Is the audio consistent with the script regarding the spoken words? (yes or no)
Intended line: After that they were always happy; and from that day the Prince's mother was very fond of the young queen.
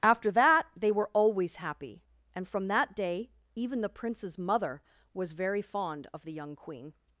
no